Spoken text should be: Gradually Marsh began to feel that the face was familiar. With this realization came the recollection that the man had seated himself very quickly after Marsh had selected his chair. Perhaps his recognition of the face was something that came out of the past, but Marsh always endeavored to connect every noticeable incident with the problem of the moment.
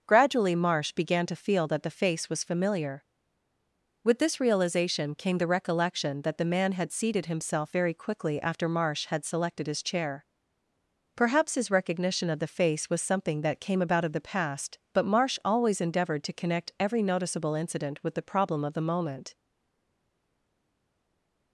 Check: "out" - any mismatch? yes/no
yes